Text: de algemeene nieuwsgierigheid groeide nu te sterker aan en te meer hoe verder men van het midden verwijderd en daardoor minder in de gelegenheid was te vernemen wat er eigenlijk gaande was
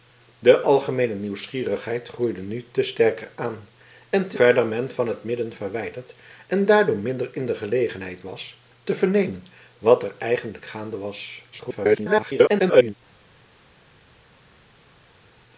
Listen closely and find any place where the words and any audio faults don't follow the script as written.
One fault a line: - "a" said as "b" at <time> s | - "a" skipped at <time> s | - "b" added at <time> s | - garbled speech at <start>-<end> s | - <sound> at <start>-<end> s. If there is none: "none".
- "meer hoe" skipped at 4.4 s
- garbled speech at 11.5-12.9 s